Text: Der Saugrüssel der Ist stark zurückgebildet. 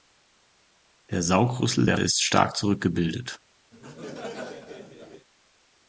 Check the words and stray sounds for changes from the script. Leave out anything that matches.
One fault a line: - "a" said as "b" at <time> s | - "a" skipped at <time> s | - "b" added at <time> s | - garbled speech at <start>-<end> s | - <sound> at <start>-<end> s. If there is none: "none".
- laugh at 3.7-5.3 s